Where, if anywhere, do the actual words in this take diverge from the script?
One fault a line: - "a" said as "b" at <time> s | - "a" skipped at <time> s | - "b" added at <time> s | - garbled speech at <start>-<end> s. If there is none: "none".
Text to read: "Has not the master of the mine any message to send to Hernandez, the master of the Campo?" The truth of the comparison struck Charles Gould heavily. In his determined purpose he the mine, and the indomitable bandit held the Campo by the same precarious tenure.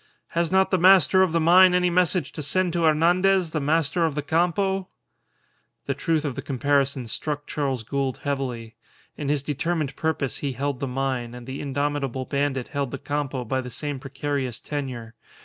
- "held" added at 10.5 s